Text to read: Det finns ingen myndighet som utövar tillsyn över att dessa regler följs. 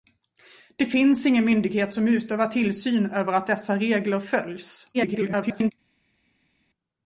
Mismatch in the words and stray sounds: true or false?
true